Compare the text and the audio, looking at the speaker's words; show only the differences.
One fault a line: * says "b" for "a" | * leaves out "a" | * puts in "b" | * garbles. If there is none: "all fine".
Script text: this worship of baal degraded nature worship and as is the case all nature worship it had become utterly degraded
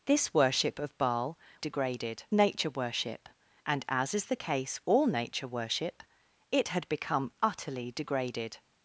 all fine